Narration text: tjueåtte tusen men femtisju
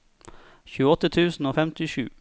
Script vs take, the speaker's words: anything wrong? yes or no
yes